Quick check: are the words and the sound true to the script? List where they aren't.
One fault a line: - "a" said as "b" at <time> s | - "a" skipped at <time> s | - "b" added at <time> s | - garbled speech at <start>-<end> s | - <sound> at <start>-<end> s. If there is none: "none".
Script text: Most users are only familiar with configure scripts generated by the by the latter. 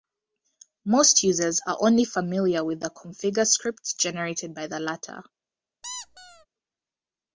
- "the" added at 2.8 s
- "by the" skipped at 4.8 s
- squeak at 5.8-6.5 s